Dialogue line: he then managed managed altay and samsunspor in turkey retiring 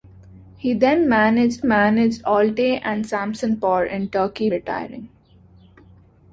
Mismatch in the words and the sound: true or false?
false